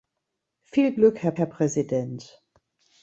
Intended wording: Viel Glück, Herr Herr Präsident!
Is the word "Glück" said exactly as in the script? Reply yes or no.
yes